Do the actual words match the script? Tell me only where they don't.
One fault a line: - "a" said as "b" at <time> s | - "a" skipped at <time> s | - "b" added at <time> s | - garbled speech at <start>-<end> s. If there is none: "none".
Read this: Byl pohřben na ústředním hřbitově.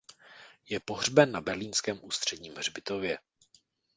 - "Byl" said as "Je" at 0.7 s
- "berlínském" added at 1.4 s